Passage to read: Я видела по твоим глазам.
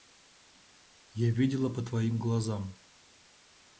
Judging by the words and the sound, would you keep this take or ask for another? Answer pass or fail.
pass